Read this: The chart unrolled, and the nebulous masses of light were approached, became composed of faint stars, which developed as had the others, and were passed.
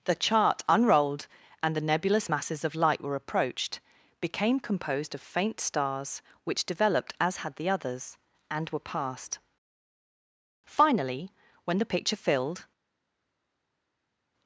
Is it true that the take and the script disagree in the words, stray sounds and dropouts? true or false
true